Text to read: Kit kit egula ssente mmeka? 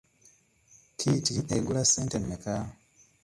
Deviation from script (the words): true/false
true